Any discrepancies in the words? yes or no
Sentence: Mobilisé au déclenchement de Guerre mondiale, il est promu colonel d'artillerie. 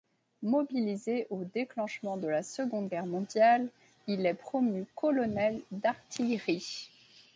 yes